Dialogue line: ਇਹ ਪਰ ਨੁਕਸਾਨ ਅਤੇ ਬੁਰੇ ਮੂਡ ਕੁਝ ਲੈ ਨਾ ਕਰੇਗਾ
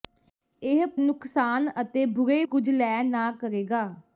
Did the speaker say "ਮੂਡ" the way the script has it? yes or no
no